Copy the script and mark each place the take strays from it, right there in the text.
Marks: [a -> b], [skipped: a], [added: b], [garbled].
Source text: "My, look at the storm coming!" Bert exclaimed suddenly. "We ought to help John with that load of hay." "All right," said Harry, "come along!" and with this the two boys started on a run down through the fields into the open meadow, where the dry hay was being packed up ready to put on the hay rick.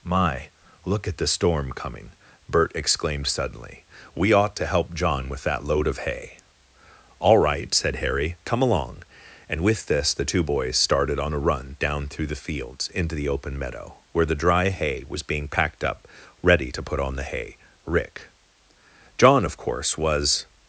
"My, look at the storm coming!" Bert exclaimed suddenly. "We ought to help John with that load of hay." "All right," said Harry, "come along!" and with this the two boys started on a run down through the fields into the open meadow, where the dry hay was being packed up ready to put on the hay rick. [added: John of course was]